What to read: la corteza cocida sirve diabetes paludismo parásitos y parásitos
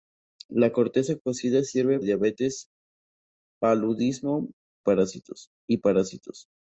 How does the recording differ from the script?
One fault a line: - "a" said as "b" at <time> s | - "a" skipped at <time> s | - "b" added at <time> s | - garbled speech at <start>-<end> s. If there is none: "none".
none